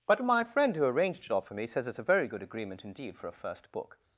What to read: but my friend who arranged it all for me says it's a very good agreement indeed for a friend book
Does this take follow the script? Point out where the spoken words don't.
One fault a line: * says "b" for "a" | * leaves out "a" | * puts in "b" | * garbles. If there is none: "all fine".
* says "first" for "friend"